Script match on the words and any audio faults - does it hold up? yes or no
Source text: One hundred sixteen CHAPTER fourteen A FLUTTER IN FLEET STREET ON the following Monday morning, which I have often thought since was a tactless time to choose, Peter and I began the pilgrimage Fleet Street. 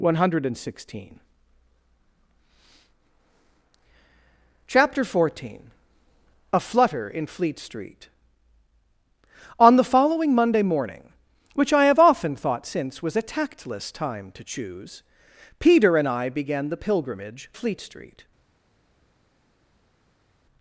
yes